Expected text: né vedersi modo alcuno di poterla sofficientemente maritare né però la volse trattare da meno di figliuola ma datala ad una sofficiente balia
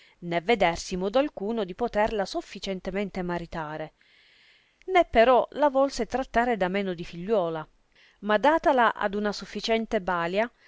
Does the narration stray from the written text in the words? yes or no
no